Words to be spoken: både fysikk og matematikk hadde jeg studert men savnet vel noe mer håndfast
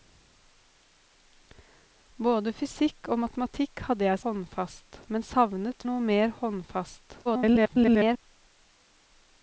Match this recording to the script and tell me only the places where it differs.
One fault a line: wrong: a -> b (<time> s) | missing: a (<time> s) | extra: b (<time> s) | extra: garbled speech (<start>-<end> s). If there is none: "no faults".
wrong: studert -> håndfast (4.2 s)
missing: vel (5.9 s)
extra: garbled speech (7.3-8.2 s)